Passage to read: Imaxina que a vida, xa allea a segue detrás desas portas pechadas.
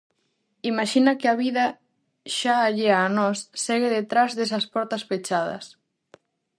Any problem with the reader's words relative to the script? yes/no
yes